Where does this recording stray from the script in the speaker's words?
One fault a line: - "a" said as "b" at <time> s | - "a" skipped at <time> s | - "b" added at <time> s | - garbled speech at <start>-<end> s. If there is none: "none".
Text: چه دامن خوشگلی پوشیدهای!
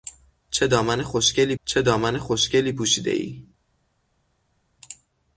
- "چه دامن خوشگلی" added at 1.6 s